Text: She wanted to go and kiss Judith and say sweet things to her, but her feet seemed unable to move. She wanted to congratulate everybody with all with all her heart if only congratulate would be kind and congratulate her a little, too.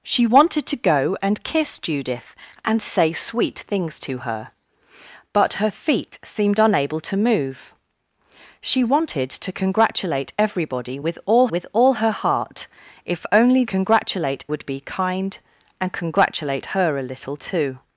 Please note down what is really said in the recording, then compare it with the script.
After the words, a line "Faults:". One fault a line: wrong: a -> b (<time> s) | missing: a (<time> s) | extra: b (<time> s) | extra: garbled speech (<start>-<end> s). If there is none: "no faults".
She wanted to go and kiss Judith and say sweet things to her, but her feet seemed unable to move. She wanted to congratulate everybody with all with all her heart if only congratulate would be kind and congratulate her a little, too.
Faults:
no faults